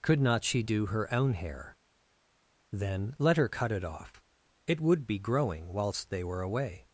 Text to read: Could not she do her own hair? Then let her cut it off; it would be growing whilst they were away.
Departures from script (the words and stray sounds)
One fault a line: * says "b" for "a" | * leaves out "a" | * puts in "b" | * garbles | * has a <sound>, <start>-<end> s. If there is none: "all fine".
all fine